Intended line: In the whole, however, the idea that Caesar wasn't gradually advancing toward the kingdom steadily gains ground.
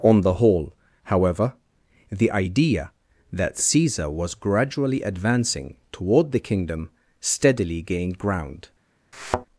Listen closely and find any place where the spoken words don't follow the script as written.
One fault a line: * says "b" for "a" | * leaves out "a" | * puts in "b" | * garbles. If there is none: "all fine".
* says "On" for "In"
* says "was" for "wasn't"
* says "gained" for "gains"